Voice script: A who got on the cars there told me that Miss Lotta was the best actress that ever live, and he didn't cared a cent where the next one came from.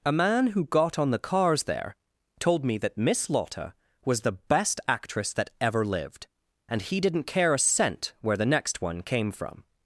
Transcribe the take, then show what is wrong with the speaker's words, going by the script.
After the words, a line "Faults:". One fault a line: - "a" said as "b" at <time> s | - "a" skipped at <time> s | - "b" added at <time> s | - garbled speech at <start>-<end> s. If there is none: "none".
A man who got on the cars there told me that Miss Lotta was the best actress that ever lived, and he didn't care a cent where the next one came from.
Faults:
- "man" added at 0.1 s
- "live" said as "lived" at 5.8 s
- "cared" said as "care" at 7.2 s